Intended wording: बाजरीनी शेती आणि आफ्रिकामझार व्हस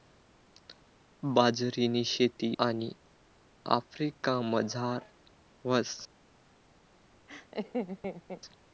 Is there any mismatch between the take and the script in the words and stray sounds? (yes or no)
yes